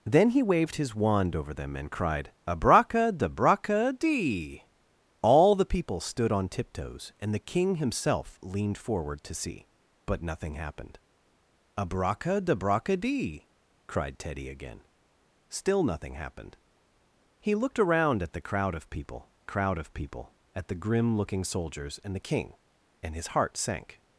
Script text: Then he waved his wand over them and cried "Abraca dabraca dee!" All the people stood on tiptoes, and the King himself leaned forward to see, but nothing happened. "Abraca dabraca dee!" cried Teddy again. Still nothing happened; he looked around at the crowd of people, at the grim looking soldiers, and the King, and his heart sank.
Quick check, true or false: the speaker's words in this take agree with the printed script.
false